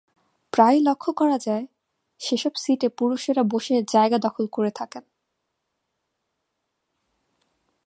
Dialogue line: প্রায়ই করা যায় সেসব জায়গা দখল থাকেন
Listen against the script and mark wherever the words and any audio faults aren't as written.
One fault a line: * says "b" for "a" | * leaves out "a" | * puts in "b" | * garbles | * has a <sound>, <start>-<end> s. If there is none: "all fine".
* puts in "লক্ষ"
* puts in "সিটে পুরুষেরা বসে"
* puts in "করে"